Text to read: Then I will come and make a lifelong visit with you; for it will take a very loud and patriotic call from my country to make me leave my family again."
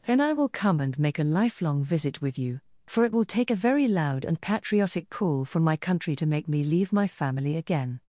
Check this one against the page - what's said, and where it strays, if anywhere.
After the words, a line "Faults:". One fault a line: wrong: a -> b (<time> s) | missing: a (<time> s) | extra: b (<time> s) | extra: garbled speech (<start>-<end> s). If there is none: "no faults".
Then I will come and make a lifelong visit with you; for it will take a very loud and patriotic call from my country to make me leave my family again."
Faults:
no faults